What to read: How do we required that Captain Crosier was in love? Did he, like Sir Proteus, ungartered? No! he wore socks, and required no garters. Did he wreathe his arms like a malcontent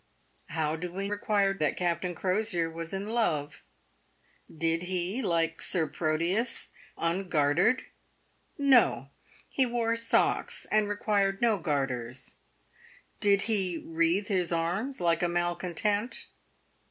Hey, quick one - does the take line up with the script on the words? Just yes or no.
yes